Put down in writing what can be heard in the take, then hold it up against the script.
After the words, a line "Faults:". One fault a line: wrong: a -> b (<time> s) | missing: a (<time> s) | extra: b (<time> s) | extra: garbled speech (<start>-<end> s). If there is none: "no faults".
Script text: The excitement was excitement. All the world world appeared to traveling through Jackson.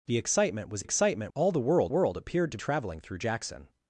The excitement was excitement. All the world world appeared to traveling through Jackson.
Faults:
no faults